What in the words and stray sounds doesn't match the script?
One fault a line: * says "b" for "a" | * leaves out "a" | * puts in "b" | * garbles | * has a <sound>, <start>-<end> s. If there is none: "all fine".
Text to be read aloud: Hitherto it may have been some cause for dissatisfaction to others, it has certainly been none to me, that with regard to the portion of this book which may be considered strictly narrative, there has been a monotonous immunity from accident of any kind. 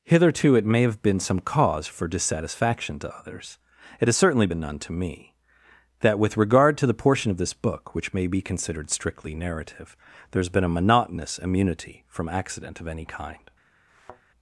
* has a thud, 13.9-14.2 s